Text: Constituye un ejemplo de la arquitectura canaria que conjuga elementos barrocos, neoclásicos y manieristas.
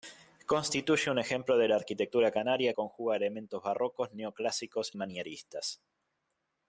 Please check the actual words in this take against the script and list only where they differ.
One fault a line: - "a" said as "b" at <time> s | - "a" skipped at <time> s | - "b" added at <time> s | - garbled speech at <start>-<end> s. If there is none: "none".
- "que" skipped at 2.7 s
- "y" skipped at 4.9 s